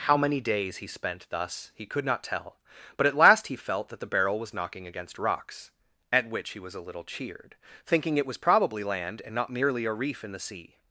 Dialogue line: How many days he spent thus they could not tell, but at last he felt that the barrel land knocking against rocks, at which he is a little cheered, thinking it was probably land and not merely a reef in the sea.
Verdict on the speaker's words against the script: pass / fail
fail